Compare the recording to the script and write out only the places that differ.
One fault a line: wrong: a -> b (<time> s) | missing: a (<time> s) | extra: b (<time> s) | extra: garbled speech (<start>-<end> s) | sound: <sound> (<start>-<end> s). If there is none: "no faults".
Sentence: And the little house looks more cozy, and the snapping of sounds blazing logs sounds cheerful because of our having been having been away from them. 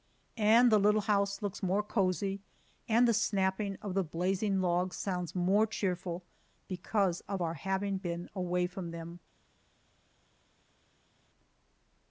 wrong: sounds -> the (3.9 s)
extra: more (5.3 s)
missing: having been (8.3 s)